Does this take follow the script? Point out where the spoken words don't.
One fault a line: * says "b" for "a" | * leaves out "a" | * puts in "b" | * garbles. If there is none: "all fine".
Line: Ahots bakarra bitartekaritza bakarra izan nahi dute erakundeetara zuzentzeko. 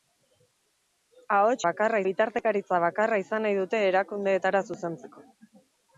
all fine